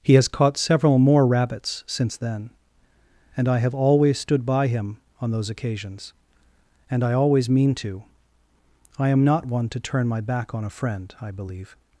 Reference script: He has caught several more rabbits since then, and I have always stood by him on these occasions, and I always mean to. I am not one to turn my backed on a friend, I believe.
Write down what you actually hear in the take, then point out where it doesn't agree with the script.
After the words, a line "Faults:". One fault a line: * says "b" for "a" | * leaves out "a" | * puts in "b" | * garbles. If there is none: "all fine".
He has caught several more rabbits since then, and I have always stood by him on those occasions, and I always mean to. I am not one to turn my back on a friend, I believe.
Faults:
* says "those" for "these"
* says "back" for "backed"